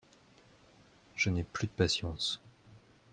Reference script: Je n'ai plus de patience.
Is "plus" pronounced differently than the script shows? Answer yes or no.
no